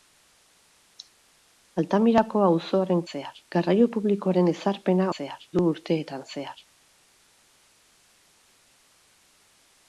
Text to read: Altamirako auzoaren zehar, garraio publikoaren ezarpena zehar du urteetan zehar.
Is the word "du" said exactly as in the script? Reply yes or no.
yes